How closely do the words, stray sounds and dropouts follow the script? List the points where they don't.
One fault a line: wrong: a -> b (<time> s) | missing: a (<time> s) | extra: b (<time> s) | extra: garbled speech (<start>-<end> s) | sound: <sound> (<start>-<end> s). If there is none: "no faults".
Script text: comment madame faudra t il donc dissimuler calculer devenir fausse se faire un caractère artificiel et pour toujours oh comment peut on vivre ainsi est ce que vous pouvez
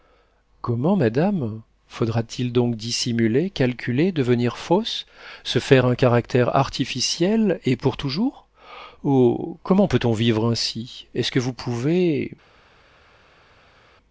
no faults